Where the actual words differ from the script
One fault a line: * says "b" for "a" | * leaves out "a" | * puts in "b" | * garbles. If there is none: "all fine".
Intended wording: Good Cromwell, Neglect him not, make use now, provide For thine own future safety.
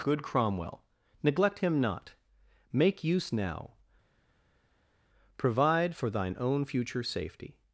all fine